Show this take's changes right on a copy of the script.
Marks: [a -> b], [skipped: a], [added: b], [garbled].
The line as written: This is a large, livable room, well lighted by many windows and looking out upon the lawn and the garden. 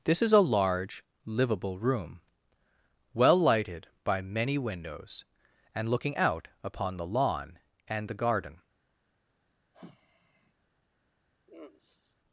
This is a large, livable room, well lighted by many windows and looking out upon the lawn and the garden.